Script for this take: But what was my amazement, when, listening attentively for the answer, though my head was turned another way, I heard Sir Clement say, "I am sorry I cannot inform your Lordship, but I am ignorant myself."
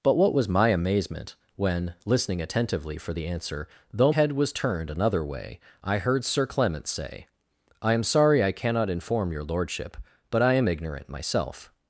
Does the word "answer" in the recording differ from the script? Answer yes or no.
no